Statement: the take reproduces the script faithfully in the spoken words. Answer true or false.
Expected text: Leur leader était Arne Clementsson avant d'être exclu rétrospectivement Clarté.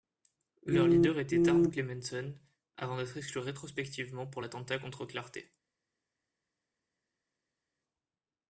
false